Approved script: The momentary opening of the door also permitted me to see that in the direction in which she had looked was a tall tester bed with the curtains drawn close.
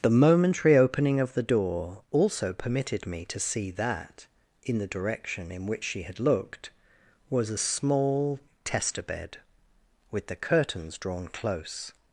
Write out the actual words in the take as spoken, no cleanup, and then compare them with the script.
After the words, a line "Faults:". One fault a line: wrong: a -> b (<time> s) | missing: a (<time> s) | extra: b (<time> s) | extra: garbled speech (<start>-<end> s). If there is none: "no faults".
The momentary opening of the door also permitted me to see that in the direction in which she had looked was a small tester bed with the curtains drawn close.
Faults:
wrong: tall -> small (7.5 s)